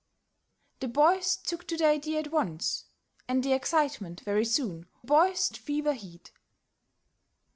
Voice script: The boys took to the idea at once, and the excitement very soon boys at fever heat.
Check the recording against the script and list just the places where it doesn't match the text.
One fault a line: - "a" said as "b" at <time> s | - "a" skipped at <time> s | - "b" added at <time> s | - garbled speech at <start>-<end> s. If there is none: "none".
none